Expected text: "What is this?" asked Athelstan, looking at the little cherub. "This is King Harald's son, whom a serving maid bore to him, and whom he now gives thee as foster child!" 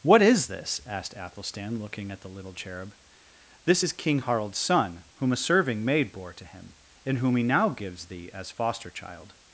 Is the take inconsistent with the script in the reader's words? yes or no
no